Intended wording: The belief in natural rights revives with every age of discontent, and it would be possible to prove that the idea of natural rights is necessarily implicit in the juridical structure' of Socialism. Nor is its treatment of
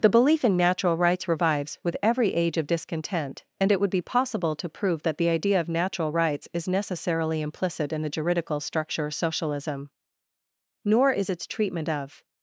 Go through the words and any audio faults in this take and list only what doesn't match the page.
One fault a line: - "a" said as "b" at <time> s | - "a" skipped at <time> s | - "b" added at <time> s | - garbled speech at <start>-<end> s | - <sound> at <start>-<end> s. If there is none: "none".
none